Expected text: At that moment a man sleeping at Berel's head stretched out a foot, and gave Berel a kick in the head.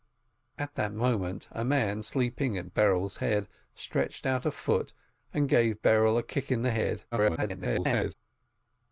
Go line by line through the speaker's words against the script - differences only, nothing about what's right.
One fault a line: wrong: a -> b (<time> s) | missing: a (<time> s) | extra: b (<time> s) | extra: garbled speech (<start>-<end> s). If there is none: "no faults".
extra: garbled speech (7.1-8.1 s)